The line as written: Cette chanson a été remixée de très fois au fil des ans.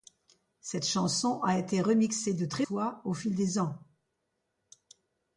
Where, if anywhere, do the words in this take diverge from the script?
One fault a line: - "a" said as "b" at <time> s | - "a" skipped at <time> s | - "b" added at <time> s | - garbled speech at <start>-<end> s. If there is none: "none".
none